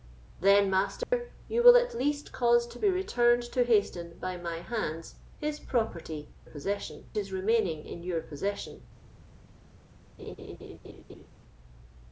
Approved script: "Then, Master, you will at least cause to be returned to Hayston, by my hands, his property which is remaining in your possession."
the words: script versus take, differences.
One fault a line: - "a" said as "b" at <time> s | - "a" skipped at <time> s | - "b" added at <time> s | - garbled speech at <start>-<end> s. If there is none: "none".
- "which" said as "possession" at 6.5 s